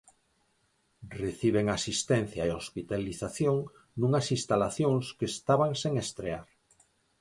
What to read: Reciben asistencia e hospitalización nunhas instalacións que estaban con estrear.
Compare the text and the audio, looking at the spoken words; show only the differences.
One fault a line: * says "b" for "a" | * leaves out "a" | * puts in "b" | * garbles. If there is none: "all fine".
* says "sen" for "con"